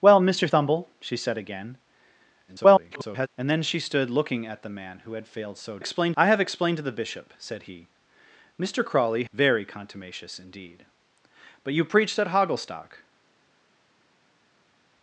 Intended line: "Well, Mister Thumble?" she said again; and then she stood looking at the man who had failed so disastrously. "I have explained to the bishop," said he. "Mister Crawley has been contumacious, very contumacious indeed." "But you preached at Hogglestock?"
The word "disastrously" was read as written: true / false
false